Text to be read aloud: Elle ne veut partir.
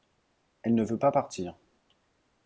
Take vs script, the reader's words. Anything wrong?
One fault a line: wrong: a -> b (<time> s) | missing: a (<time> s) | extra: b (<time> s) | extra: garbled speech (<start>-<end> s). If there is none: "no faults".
extra: pas (1.0 s)